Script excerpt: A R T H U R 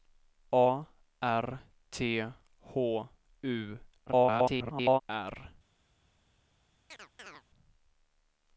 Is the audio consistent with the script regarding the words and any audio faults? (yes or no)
no